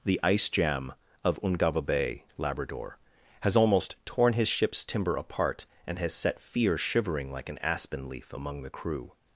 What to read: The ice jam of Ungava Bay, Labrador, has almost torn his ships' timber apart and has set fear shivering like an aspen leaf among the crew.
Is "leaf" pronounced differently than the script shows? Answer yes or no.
no